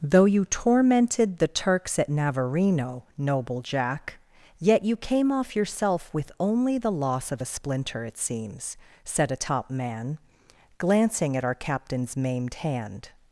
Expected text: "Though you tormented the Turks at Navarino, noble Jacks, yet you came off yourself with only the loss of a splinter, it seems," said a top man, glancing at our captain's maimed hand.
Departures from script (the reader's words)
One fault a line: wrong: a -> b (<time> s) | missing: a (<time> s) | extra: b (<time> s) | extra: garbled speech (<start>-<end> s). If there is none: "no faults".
wrong: Jacks -> Jack (3.6 s)